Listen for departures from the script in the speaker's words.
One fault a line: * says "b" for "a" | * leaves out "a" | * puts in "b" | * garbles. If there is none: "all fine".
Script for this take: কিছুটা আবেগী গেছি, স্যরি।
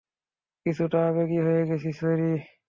* puts in "হয়ে"